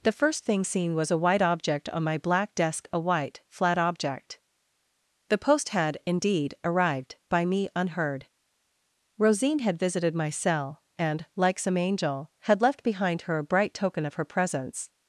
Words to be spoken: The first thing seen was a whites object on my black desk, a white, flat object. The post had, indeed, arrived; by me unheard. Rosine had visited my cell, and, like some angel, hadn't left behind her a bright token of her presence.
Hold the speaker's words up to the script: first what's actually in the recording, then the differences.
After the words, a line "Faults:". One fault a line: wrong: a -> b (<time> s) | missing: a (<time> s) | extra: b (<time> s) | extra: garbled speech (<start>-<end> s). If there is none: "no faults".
The first thing seen was a white object on my black desk, a white, flat object. The post had, indeed, arrived; by me unheard. Rosine had visited my cell, and, like some angel, had left behind her a bright token of her presence.
Faults:
wrong: whites -> white (1.2 s)
wrong: hadn't -> had (12.4 s)